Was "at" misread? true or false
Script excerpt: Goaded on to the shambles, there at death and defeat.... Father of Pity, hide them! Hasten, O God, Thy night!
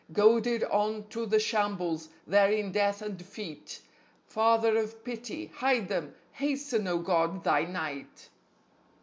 true